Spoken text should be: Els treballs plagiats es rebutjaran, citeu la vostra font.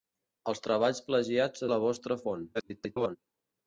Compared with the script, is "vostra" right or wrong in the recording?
right